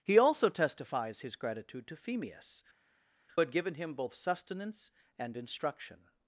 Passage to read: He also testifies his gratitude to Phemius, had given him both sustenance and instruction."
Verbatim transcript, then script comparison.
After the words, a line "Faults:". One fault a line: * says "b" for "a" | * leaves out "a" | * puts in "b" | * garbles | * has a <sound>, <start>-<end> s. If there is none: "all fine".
He also testifies his gratitude to Phemius, had given him both sustenance and instruction."
Faults:
all fine